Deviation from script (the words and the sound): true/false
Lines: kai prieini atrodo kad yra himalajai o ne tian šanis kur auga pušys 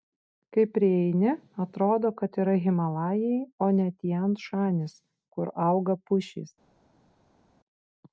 false